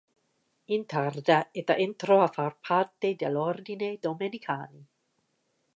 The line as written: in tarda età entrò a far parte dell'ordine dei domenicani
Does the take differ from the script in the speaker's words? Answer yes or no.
yes